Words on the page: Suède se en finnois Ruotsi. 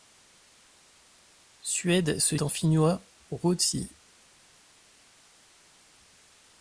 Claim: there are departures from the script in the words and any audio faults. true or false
false